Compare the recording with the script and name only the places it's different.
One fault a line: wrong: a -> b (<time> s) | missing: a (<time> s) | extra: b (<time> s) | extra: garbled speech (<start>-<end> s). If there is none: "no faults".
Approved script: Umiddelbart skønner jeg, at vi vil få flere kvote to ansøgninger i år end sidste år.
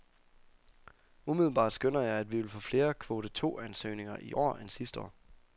no faults